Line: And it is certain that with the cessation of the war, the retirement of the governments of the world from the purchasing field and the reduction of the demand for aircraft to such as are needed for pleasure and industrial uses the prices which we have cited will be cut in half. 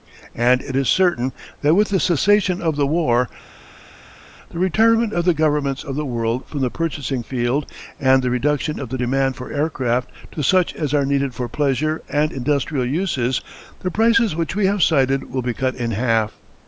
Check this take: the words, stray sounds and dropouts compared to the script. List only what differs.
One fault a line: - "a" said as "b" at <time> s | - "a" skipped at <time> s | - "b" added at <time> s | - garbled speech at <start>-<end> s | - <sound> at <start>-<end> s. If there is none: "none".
none